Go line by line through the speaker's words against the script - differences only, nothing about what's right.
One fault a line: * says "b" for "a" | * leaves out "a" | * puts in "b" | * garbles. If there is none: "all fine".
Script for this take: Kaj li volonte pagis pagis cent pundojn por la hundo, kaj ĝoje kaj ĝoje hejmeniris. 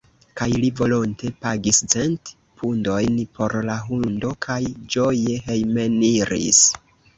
* leaves out "pagis"
* leaves out "kaj ĝoje"